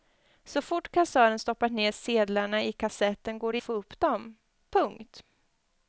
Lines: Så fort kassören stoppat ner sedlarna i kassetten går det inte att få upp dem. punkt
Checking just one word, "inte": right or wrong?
wrong